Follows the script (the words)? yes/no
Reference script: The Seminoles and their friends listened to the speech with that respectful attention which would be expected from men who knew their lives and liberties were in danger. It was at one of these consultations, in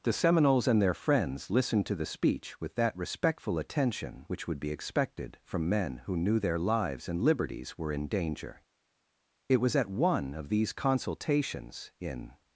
yes